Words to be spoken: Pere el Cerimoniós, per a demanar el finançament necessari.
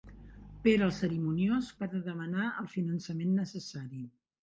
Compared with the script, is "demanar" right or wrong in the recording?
right